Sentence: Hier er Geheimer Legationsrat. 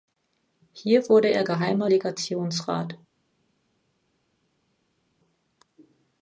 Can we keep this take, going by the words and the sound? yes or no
no